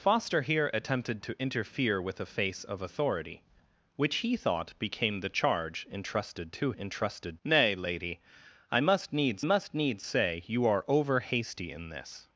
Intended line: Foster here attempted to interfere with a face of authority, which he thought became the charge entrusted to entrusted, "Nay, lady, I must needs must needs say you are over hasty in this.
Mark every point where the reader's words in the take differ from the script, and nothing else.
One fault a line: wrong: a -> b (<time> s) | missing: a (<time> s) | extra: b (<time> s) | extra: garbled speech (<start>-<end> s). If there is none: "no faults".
no faults